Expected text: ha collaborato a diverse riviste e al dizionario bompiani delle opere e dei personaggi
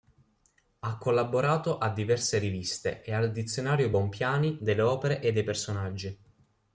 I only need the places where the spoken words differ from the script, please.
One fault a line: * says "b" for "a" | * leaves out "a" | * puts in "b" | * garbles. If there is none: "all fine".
all fine